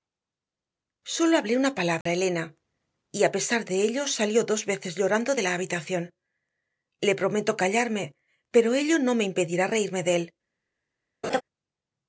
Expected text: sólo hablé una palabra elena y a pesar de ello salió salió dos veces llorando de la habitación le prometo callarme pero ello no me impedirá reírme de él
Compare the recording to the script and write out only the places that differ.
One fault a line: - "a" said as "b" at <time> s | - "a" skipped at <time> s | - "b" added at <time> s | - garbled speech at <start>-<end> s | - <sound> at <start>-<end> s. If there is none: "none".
- dropout at 2.0-2.1 s
- "salió" skipped at 4.5 s
- laugh at 11.2-11.4 s